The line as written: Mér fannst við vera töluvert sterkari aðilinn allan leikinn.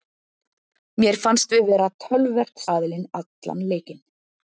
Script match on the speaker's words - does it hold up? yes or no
no